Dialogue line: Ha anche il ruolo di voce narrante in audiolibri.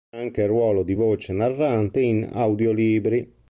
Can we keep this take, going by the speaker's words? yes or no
yes